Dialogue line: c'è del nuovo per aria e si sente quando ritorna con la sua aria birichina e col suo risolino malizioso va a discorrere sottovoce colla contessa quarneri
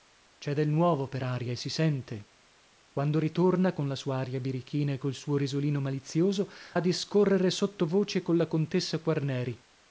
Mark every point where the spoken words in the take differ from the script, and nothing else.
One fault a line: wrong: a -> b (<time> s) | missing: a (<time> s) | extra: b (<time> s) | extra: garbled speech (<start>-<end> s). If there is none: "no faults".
missing: va (6.5 s)